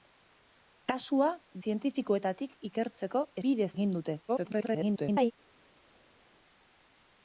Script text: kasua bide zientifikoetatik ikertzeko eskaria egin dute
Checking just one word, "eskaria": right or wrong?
wrong